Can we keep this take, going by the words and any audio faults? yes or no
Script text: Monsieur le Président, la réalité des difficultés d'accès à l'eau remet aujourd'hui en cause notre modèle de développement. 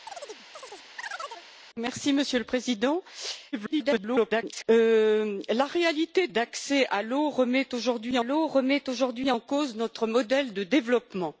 no